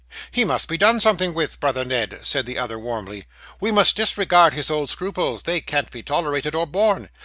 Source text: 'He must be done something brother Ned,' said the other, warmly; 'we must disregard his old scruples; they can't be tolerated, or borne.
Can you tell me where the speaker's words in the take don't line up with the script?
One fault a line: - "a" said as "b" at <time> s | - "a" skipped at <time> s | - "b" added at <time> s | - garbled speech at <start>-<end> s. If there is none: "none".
- "with" added at 1.3 s